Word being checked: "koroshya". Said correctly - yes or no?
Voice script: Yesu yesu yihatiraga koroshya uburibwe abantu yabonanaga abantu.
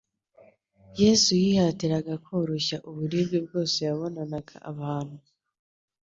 yes